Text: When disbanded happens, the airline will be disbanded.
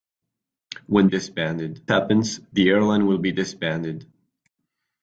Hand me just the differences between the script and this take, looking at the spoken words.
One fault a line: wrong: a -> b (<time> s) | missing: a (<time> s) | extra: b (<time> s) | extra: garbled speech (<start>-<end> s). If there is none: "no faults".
no faults